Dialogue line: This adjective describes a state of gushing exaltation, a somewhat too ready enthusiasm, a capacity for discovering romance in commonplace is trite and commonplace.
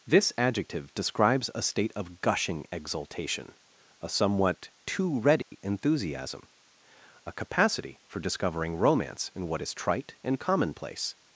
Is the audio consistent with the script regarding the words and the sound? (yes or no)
no